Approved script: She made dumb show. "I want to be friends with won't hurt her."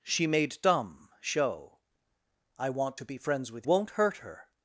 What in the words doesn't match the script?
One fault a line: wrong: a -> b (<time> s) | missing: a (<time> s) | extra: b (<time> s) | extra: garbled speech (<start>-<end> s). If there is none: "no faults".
no faults